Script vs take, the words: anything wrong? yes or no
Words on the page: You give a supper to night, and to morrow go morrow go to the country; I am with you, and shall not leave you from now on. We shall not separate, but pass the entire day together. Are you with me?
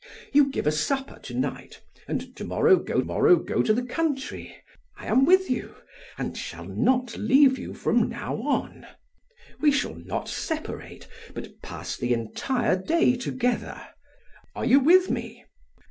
no